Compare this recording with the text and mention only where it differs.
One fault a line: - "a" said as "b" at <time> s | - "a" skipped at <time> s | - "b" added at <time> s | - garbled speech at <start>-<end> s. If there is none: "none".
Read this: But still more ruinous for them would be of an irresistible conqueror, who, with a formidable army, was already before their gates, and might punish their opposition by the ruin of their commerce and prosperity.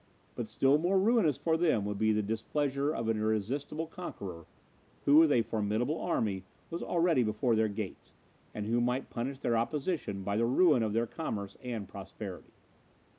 - "the displeasure" added at 2.1 s
- "who" added at 8.7 s